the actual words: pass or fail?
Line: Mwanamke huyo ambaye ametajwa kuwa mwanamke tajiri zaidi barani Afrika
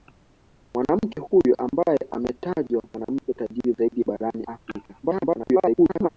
fail